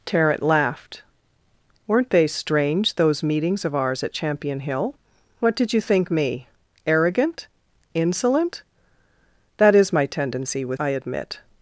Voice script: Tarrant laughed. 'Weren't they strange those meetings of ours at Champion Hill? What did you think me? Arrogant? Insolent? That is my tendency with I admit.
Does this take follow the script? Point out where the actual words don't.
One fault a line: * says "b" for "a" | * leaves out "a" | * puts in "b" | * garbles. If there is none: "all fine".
all fine